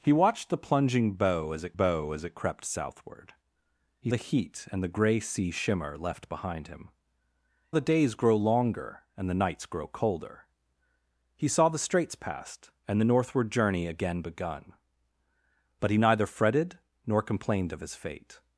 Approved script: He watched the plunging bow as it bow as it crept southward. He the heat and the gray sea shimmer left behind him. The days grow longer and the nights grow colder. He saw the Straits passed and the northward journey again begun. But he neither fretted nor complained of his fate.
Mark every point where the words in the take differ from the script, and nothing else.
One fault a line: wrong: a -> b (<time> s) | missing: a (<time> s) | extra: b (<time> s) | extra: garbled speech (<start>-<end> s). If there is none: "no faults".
no faults